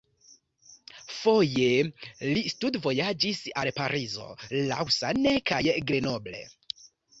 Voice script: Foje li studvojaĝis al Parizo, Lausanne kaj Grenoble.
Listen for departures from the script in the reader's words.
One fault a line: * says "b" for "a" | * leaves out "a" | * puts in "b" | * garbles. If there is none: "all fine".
all fine